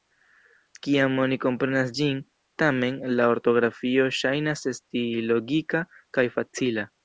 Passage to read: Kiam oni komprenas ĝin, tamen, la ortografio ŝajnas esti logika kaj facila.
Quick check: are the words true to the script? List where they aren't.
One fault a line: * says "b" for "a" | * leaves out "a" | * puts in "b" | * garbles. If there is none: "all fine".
all fine